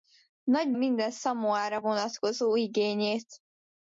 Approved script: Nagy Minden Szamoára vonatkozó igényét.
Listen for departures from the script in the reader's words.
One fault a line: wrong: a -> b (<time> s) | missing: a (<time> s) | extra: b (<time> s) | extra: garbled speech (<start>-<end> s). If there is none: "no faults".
no faults